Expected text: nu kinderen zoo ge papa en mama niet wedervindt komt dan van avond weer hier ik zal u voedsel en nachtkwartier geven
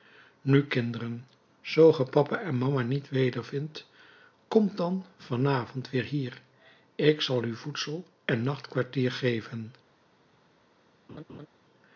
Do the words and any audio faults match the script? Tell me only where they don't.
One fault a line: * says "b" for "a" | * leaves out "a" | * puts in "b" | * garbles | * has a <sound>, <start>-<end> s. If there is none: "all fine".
* has a laugh, 11.1-11.5 s